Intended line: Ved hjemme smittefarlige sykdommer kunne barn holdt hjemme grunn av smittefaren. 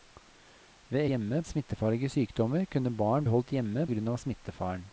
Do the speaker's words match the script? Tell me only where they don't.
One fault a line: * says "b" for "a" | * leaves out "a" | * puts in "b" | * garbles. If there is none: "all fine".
all fine